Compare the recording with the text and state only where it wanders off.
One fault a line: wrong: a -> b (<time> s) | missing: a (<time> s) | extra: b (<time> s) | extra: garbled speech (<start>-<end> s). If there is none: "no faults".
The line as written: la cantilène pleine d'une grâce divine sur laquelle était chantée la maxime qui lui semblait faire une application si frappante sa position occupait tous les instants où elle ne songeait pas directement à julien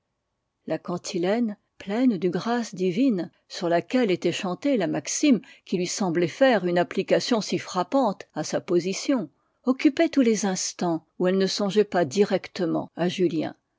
extra: à (8.3 s)